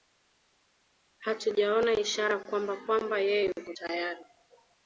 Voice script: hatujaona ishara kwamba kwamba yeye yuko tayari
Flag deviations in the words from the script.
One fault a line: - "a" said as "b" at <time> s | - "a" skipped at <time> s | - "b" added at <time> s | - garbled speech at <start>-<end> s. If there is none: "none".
none